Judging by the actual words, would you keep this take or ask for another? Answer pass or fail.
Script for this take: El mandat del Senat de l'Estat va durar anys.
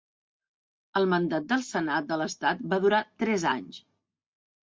fail